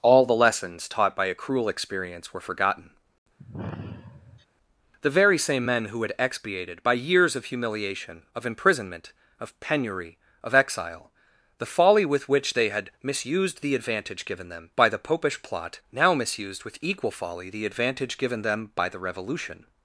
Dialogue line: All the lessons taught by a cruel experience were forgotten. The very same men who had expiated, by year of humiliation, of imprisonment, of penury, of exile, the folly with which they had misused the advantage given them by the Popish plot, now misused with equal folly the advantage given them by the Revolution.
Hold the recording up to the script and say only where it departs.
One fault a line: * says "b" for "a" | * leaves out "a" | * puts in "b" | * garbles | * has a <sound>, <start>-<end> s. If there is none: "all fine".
* has a sigh, 3.4-4.5 s
* says "years" for "year"